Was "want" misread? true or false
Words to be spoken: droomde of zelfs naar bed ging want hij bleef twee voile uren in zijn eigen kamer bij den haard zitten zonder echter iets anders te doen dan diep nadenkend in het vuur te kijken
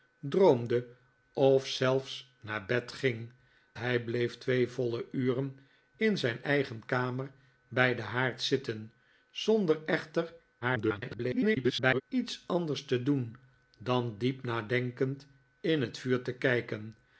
true